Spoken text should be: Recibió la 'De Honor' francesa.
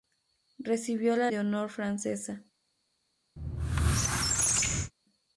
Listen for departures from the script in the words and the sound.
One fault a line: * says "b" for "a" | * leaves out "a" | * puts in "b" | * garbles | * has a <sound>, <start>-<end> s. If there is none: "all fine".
* has a squeak, 3.4-4.9 s